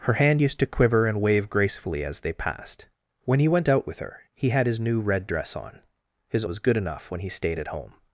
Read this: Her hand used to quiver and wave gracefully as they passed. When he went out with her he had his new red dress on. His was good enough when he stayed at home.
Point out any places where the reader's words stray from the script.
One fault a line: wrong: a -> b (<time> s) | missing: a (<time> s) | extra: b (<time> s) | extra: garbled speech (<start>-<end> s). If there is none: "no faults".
no faults